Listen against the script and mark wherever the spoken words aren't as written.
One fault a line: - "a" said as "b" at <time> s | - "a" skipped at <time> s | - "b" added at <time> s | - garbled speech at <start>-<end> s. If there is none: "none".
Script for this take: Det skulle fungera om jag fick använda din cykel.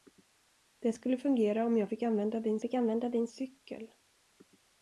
- "fick använda din" added at 2.6 s